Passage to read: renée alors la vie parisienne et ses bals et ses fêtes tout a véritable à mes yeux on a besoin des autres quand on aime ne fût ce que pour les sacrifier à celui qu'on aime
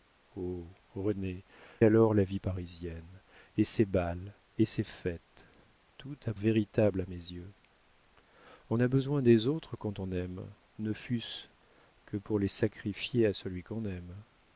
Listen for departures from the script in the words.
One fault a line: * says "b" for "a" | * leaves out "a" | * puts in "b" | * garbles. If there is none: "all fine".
all fine